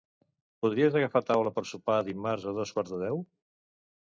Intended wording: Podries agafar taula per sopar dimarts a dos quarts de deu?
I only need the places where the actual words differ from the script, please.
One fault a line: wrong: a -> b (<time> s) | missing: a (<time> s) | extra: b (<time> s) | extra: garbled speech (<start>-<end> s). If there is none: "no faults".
no faults